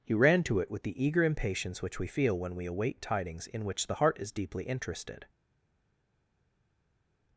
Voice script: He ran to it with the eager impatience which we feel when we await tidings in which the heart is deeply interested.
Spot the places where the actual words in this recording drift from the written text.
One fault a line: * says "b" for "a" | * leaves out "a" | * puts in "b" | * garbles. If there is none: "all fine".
all fine